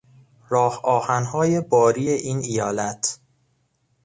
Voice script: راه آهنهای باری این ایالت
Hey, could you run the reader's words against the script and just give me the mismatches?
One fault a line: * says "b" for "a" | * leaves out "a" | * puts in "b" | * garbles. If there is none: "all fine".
all fine